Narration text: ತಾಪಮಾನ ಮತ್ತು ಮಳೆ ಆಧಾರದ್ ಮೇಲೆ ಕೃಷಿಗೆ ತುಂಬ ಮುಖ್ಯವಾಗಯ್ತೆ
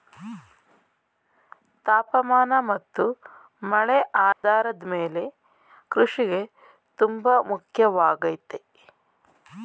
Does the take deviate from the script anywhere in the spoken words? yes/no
no